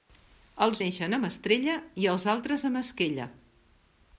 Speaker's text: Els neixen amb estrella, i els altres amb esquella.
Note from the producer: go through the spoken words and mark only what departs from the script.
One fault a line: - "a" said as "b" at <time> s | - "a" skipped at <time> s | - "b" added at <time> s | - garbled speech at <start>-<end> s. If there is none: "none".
none